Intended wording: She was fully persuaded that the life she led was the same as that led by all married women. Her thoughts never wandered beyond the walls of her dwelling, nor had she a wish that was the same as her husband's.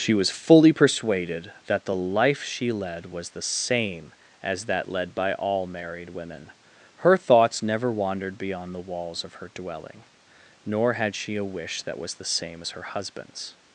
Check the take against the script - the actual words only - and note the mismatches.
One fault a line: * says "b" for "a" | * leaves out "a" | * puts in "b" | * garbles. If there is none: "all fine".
all fine